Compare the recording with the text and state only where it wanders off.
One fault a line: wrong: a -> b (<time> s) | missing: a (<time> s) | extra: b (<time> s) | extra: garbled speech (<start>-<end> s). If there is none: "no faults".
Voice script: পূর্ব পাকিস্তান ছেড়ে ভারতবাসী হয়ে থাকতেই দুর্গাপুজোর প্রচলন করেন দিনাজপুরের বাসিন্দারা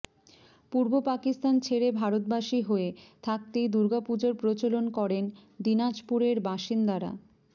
no faults